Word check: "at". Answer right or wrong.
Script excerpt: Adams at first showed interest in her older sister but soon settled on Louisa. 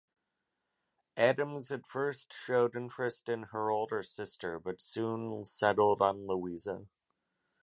right